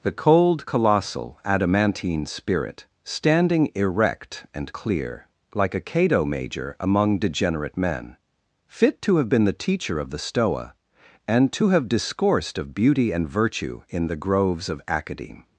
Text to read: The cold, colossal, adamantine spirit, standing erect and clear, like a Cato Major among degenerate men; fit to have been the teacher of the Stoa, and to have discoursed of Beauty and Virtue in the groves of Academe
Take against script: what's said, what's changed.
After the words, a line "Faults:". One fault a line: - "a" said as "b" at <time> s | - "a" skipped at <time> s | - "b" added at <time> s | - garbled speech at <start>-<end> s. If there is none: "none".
The cold, colossal, adamantine spirit, standing erect and clear, like a Cato Major among degenerate men; fit to have been the teacher of the Stoa, and to have discoursed of Beauty and Virtue in the groves of Academe
Faults:
none